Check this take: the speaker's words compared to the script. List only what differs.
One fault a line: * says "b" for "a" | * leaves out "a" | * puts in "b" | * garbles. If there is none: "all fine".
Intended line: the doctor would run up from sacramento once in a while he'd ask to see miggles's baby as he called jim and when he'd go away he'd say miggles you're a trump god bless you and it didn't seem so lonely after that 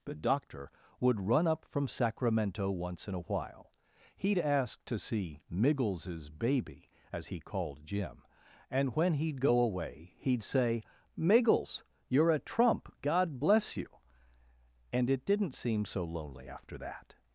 all fine